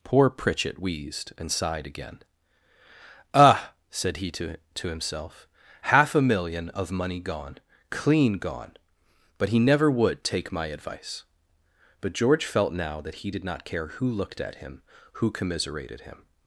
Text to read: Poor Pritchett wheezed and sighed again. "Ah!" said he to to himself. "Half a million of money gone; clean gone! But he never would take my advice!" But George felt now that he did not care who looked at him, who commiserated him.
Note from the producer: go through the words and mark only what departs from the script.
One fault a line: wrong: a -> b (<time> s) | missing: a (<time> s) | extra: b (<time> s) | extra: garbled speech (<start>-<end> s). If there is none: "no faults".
no faults